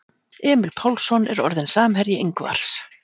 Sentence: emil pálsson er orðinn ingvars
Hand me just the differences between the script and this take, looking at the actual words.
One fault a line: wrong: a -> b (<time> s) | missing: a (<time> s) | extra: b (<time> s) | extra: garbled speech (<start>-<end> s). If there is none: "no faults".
extra: samherji (1.7 s)